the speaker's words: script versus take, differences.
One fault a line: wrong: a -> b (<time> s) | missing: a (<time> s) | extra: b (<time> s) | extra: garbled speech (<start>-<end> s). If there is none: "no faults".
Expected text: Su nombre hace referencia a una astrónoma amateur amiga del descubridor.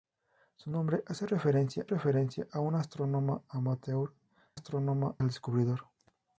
extra: referencia (1.9 s)
wrong: amiga -> astrónoma (4.5 s)